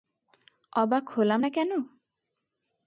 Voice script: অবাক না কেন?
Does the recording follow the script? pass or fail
fail